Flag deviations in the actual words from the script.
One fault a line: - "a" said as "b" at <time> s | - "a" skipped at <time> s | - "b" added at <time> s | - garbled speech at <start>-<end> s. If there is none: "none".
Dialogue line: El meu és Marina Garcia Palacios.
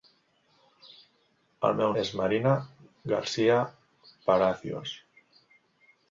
none